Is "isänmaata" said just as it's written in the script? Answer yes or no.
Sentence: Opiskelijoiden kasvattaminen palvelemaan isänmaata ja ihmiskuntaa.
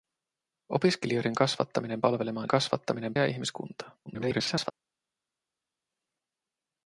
no